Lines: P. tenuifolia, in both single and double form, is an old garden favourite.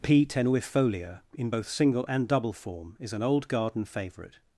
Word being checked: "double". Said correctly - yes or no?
yes